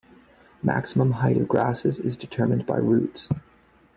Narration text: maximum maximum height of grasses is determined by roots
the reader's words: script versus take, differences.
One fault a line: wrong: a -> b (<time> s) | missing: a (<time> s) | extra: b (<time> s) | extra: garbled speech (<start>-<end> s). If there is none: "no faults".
missing: maximum (1.1 s)